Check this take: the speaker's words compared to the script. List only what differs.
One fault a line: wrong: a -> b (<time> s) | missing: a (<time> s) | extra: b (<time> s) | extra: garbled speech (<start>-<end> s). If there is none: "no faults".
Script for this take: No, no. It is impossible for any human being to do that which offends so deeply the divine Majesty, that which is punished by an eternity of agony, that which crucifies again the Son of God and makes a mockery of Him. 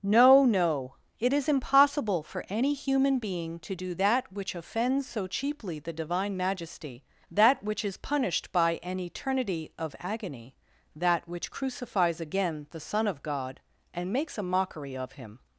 wrong: deeply -> cheaply (5.3 s)